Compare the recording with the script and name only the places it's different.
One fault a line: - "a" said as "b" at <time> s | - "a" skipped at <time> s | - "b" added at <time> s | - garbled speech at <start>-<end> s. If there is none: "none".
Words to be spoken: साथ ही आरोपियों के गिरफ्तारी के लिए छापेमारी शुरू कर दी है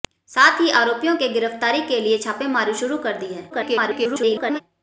- garbled speech at 3.5-4.6 s